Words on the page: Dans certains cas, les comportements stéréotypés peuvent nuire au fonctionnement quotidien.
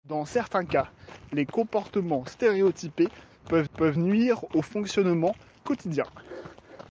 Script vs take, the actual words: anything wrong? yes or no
yes